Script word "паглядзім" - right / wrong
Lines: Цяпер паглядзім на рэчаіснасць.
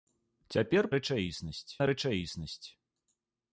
wrong